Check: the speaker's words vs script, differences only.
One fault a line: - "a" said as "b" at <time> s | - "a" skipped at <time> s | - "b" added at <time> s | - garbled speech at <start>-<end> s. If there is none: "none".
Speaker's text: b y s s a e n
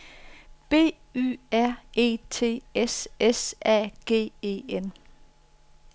- "r e t" added at 1.5 s
- "g" added at 4.0 s